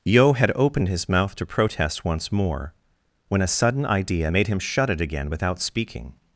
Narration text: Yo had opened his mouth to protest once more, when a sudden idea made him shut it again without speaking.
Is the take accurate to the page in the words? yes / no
yes